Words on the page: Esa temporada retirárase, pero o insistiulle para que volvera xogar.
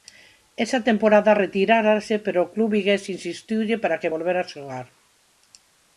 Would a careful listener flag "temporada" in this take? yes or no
no